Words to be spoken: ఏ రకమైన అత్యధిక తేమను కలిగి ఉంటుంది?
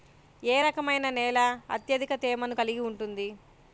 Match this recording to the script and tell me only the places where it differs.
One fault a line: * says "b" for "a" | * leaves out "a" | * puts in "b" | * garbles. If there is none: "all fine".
* puts in "నేల"